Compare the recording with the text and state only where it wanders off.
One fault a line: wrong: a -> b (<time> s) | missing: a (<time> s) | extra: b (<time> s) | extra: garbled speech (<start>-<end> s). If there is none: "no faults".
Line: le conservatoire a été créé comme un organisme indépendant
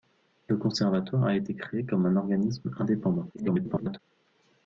extra: garbled speech (3.3-4.0 s)